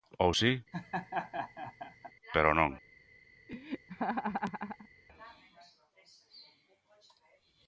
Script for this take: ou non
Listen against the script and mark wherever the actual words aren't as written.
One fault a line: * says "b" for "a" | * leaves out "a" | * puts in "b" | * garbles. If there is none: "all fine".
* puts in "si pero"